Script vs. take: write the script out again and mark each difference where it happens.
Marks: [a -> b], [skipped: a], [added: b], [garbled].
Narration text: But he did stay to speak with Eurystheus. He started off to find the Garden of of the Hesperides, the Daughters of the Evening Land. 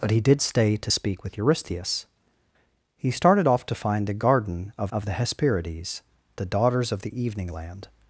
But he did stay to speak with Eurystheus. He started off to find the Garden of of the Hesperides, the Daughters of the Evening Land.